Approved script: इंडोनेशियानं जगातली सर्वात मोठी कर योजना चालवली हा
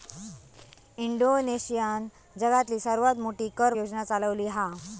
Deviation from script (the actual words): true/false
false